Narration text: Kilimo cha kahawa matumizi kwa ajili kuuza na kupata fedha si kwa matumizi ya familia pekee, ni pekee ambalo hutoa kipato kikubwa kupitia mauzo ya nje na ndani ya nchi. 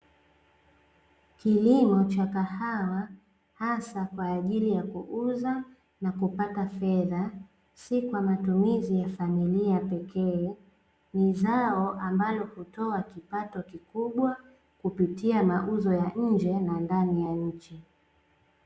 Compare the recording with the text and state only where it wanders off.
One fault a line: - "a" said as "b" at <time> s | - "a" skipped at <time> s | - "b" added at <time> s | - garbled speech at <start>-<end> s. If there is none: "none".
- "matumizi" said as "hasa" at 3.5 s
- "ya" added at 4.7 s
- "pekee" said as "zao" at 11.3 s